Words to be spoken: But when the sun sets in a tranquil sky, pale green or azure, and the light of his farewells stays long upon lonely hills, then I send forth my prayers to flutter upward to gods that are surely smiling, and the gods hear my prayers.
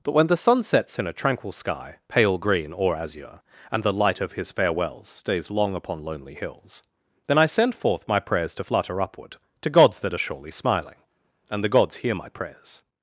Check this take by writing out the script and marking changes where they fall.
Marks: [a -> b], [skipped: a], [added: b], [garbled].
But when the sun sets in a tranquil sky, pale green or azure, and the light of his farewells stays long upon lonely hills, then I send forth my prayers to flutter upward to gods that are surely smiling, and the gods hear my prayers.